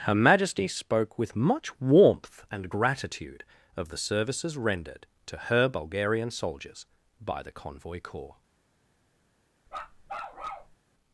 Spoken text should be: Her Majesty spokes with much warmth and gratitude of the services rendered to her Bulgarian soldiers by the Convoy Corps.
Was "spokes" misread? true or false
true